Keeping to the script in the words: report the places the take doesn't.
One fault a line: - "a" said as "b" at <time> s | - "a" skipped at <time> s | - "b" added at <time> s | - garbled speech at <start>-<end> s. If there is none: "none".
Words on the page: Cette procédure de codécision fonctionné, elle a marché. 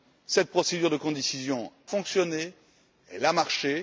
none